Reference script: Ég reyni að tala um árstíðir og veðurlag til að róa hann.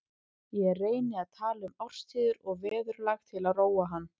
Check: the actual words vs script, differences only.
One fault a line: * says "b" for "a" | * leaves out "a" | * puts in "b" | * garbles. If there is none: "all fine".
all fine